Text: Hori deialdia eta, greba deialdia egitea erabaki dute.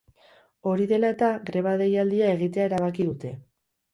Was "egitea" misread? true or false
false